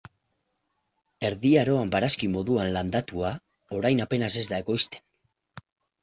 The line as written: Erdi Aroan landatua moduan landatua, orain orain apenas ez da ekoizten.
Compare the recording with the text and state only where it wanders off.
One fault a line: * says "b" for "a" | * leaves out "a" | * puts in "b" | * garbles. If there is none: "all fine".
* says "barazki" for "landatua"
* leaves out "orain"